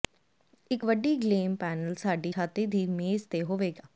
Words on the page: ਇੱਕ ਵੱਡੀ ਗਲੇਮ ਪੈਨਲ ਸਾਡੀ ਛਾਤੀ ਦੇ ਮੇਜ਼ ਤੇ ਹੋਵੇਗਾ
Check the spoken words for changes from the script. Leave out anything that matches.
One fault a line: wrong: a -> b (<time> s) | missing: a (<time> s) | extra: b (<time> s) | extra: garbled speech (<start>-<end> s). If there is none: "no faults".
wrong: ਦੇ -> ਦੀ (2.7 s)